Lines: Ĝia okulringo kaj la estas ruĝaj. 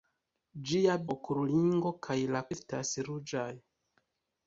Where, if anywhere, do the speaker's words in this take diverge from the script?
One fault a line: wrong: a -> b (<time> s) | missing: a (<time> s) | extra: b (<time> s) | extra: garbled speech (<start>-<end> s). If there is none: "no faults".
no faults